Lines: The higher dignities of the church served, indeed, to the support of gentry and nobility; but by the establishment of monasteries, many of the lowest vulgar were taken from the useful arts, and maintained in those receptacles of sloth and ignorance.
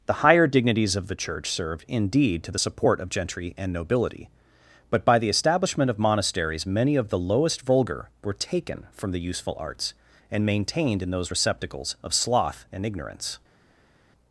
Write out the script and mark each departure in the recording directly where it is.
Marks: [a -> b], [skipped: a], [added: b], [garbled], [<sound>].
The higher dignities of the church served, indeed, to the support of gentry and nobility; but by the establishment of monasteries, many of the lowest vulgar were taken from the useful arts, and maintained in those receptacles of sloth and ignorance.